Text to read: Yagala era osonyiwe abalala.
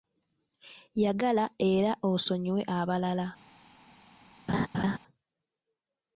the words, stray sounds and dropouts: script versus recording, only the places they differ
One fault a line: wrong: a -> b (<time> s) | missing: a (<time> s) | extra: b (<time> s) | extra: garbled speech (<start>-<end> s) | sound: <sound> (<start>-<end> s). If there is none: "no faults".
sound: laugh (4.5-5.0 s)